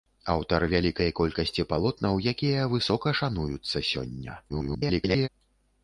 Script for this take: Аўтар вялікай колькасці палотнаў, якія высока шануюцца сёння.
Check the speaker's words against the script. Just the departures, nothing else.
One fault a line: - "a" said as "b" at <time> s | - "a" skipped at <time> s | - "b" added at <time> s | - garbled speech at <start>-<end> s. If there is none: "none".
- garbled speech at 4.5-5.3 s